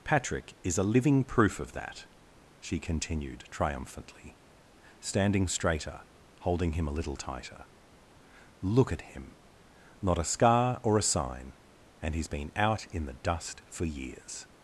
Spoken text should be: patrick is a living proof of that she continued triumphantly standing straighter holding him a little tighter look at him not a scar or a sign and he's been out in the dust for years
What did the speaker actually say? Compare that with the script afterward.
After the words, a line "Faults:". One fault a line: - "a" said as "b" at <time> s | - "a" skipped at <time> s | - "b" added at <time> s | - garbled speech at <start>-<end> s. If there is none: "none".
patrick is a living proof of that she continued triumphantly standing straighter holding him a little tighter look at him not a scar or a sign and he's been out in the dust for years
Faults:
none